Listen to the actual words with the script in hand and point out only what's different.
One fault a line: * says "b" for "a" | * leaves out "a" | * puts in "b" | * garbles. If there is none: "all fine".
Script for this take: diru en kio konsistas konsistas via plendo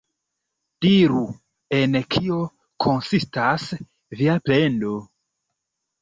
* leaves out "konsistas"